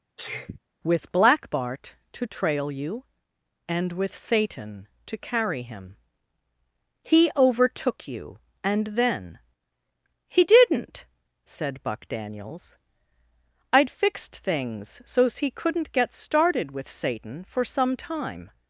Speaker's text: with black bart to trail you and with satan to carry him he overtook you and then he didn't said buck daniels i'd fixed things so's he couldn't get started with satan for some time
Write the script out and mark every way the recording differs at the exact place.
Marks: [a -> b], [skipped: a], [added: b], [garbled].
with black bart to trail you and with satan to carry him he overtook you and then he didn't said buck daniels i'd fixed things so's he couldn't get started with satan for some time